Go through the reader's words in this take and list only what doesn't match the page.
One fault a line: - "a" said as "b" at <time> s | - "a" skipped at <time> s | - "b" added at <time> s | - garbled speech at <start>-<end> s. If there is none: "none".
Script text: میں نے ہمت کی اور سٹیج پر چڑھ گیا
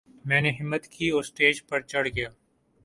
none